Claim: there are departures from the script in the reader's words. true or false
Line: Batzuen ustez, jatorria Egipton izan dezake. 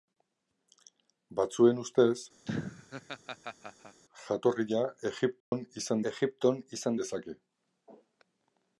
true